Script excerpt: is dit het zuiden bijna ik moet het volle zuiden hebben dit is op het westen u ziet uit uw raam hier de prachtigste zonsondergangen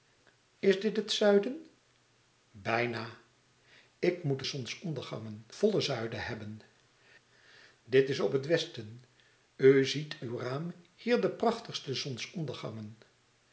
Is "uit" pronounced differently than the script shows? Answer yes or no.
yes